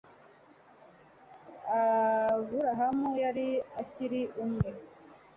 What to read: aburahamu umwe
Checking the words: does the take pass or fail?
fail